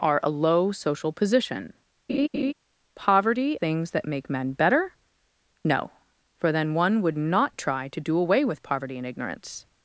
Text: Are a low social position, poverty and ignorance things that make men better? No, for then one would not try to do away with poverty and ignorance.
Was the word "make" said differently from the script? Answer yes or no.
no